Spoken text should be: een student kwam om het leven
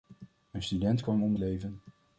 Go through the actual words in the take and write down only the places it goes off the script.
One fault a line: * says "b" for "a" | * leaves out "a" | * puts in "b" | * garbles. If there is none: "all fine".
* leaves out "het"